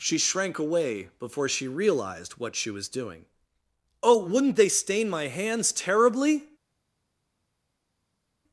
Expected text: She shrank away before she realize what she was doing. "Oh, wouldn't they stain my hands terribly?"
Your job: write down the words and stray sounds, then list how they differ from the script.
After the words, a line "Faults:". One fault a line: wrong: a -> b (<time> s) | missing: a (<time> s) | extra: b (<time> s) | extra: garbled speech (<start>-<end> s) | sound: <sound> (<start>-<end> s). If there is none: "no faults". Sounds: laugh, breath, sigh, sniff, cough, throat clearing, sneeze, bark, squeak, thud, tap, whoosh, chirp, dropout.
She shrank away before she realized what she was doing. "Oh, wouldn't they stain my hands terribly?"
Faults:
wrong: realize -> realized (1.7 s)